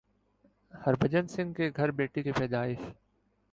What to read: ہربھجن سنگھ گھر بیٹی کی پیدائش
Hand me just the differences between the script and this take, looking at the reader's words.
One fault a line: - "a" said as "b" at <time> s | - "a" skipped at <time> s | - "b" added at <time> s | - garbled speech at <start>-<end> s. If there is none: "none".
- "کے" added at 1.5 s